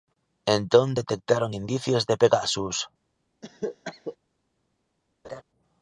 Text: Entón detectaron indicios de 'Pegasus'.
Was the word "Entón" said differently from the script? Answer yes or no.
no